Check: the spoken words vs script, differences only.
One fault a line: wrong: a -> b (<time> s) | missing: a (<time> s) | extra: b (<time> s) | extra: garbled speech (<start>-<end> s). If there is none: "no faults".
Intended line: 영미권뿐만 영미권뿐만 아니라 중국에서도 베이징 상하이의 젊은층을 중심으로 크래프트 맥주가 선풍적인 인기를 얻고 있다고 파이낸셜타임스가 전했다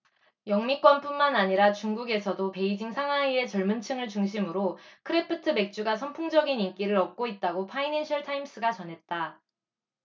missing: 영미권뿐만 (1.4 s)